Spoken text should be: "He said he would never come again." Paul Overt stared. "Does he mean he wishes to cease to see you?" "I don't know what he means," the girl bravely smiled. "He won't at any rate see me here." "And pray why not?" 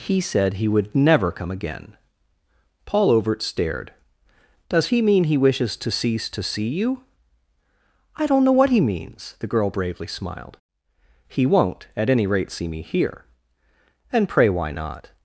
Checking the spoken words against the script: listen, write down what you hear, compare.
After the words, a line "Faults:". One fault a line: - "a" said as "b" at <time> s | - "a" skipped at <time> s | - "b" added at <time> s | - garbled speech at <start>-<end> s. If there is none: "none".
"He said he would never come again." Paul Overt stared. "Does he mean he wishes to cease to see you?" "I don't know what he means," the girl bravely smiled. "He won't at any rate see me here." "And pray why not?"
Faults:
none